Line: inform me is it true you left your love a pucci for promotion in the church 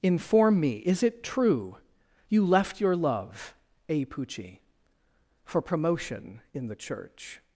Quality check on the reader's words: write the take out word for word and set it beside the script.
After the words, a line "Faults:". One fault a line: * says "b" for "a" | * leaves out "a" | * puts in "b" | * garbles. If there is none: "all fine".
inform me is it true you left your love a pucci for promotion in the church
Faults:
all fine